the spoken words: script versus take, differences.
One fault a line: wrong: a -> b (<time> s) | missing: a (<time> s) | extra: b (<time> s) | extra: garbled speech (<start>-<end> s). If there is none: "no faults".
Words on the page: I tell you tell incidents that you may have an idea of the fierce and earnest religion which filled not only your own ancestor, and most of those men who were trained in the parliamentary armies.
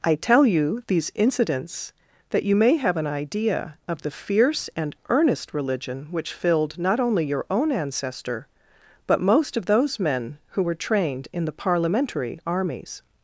wrong: tell -> these (0.9 s)
wrong: and -> but (9.1 s)